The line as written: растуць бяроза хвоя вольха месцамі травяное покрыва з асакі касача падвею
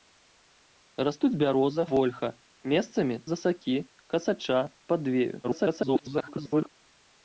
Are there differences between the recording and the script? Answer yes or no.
yes